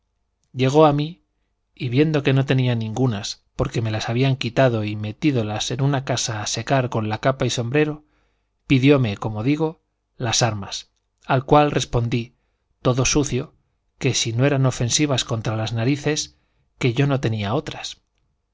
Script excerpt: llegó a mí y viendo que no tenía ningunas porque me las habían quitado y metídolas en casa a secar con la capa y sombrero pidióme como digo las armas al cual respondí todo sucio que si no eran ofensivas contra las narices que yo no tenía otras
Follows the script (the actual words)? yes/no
no